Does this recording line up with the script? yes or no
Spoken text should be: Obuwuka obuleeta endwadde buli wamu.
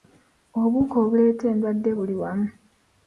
yes